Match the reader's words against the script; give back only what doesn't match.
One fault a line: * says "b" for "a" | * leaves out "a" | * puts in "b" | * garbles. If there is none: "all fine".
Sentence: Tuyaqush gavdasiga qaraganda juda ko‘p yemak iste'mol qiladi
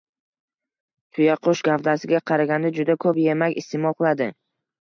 all fine